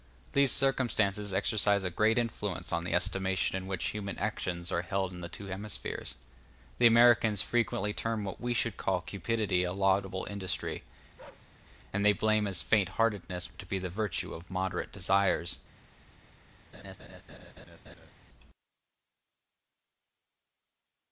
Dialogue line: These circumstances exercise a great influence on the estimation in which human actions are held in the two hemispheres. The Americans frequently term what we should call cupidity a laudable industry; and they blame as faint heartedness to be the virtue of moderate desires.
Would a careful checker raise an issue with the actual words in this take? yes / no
no